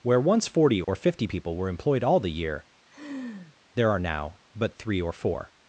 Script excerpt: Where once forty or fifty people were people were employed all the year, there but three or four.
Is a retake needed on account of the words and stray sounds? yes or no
yes